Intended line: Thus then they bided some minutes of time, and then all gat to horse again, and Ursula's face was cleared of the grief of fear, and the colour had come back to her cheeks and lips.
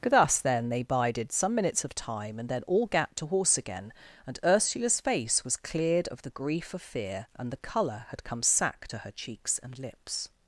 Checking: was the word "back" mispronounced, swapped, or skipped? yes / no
yes